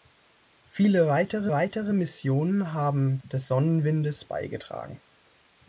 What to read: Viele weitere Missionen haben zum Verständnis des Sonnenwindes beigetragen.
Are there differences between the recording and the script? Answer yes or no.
yes